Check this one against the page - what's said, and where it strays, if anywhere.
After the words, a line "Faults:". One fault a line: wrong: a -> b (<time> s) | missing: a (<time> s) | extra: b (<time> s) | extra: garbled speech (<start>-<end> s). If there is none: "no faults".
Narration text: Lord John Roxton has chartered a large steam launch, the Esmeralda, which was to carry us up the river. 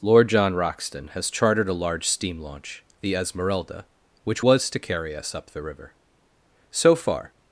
Lord John Roxton has chartered a large steam launch, the Esmeralda, which was to carry us up the river. So far
Faults:
extra: So far (6.7 s)